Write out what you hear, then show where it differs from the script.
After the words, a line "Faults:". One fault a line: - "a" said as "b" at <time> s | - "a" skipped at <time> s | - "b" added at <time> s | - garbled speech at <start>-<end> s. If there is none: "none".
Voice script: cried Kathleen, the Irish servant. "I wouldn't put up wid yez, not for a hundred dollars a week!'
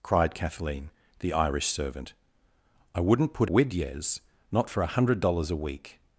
cried Kathleen, the Irish servant. "I wouldn't put wid yez, not for a hundred dollars a week!'
Faults:
- "up" skipped at 3.5 s